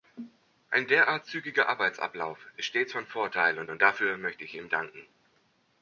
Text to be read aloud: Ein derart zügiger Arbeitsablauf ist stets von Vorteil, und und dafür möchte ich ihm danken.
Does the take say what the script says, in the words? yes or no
yes